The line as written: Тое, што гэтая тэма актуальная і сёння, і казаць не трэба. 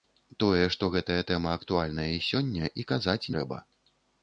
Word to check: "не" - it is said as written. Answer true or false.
false